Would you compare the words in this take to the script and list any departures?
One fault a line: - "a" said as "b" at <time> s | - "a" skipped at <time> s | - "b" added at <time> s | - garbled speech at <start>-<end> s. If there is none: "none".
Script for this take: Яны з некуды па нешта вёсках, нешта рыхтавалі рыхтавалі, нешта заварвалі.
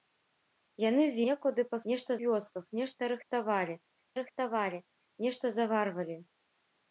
none